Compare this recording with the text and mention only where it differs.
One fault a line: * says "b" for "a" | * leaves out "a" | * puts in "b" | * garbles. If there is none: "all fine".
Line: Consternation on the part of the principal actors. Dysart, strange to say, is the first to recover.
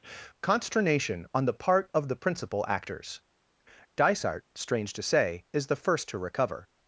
all fine